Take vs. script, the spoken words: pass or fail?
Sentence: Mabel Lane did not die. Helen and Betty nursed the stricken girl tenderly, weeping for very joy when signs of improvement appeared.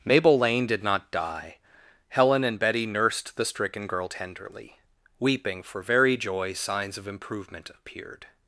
fail